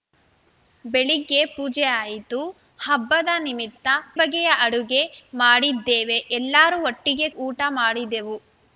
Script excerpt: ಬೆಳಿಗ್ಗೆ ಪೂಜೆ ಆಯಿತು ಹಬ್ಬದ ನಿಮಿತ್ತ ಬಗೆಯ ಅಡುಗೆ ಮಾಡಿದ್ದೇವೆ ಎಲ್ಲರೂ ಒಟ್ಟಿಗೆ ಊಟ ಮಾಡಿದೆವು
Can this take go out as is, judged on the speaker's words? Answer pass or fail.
pass